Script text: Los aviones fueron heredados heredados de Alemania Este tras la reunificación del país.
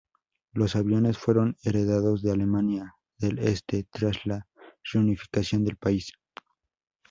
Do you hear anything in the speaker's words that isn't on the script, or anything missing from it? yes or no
yes